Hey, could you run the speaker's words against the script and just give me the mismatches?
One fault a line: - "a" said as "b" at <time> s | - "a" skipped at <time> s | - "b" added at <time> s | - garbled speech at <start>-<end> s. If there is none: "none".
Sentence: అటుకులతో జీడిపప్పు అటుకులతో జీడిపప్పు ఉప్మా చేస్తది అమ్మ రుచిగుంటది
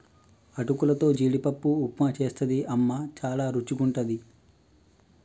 - "అటుకులతో జీడిపప్పు" skipped at 1.7 s
- "చాల" added at 3.2 s